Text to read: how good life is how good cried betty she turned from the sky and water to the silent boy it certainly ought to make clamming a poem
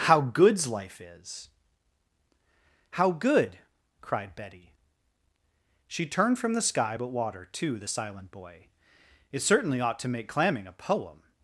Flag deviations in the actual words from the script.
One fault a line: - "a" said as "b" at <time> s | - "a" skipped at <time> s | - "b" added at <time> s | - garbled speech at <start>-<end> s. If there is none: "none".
- "good" said as "goods" at 0.2 s
- "and" said as "but" at 6.9 s